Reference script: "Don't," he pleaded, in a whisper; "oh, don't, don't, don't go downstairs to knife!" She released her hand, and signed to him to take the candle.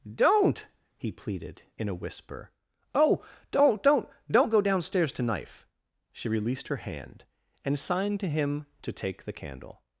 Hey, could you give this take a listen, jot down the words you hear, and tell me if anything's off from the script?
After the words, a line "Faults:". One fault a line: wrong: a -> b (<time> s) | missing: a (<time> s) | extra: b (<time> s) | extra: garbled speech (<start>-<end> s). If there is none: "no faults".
"Don't," he pleaded, in a whisper; "oh, don't, don't, don't go downstairs to knife!" She released her hand, and signed to him to take the candle.
Faults:
no faults